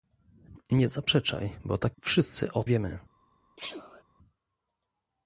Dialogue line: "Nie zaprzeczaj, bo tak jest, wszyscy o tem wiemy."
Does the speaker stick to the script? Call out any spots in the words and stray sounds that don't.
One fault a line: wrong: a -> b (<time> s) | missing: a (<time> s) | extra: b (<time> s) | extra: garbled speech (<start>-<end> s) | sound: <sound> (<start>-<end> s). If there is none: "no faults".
missing: jest (2.0 s)
missing: tem (2.6 s)
sound: sneeze (3.6-4.0 s)